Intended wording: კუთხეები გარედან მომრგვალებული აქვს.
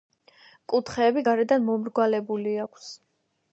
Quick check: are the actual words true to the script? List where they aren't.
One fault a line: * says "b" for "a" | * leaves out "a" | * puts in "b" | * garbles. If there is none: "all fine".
all fine